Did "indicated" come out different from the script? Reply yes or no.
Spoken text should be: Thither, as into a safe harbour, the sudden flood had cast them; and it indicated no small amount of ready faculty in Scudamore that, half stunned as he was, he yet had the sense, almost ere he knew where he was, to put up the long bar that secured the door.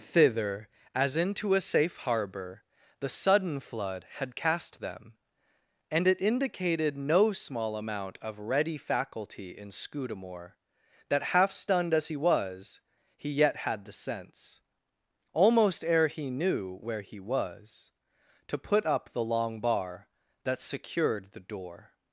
no